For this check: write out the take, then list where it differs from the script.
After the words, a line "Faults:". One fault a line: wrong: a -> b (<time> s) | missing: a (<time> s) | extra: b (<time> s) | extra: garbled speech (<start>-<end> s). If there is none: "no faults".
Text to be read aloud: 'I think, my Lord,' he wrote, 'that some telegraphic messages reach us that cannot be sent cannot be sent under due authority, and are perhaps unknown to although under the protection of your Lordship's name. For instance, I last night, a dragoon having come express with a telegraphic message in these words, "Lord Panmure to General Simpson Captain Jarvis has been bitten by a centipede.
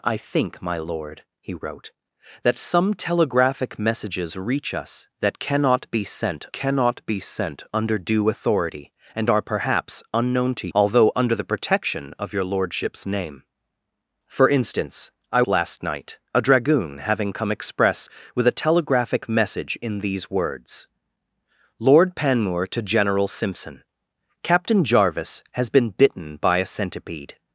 'I think, my Lord,' he wrote, 'that some telegraphic messages reach us that cannot be sent cannot be sent under due authority, and are perhaps unknown to although under the protection of your Lordship's name. For instance, I last night, a dragoon having come express with a telegraphic message in these words, "Lord Panmure to General Simpson Captain Jarvis has been bitten by a centipede.
Faults:
no faults